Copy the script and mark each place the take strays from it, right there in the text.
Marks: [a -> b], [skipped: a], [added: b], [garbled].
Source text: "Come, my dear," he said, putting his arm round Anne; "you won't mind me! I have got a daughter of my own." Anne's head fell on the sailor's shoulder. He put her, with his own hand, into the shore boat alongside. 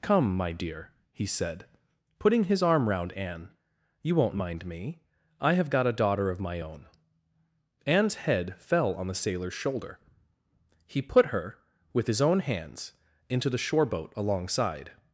"Come, my dear," he said, putting his arm round Anne; "you won't mind me! I have got a daughter of my own." Anne's head fell on the sailor's shoulder. He put her, with his own [hand, -> hands] into the shore boat alongside.